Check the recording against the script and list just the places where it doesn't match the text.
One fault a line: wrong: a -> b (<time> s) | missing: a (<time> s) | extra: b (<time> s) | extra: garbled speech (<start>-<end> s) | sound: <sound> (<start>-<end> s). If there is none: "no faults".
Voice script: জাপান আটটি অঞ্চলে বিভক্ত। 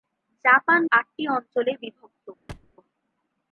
sound: thud (2.5-2.7 s)